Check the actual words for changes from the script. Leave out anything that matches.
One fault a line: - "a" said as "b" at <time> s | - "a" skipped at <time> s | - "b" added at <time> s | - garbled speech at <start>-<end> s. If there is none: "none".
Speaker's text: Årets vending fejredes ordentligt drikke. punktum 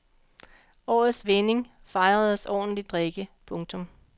none